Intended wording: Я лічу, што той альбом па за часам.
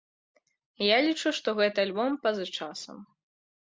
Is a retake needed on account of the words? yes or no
yes